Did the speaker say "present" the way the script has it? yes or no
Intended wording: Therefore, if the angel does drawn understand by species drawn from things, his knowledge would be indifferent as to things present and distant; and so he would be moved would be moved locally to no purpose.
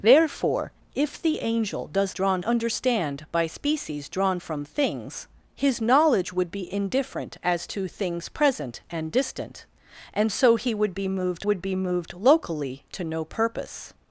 yes